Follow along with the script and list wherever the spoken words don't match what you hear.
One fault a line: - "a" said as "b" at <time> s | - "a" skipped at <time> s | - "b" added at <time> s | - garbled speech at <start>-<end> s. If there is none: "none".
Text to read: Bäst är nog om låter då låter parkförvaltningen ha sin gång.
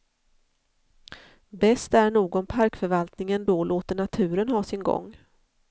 - "låter" said as "parkförvaltningen" at 2.5 s
- "parkförvaltningen" said as "naturen" at 3.9 s